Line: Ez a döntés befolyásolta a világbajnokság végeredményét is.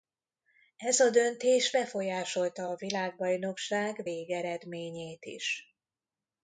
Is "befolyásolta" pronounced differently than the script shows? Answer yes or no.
no